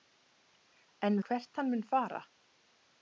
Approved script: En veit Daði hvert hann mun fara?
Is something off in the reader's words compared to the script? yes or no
yes